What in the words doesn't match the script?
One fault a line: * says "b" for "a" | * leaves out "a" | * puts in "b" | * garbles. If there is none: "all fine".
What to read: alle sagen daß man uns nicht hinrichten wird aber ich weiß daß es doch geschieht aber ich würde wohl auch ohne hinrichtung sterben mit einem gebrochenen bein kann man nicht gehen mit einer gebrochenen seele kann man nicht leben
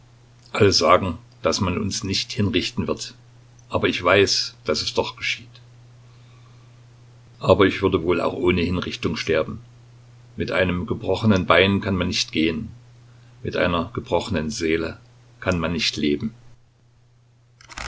all fine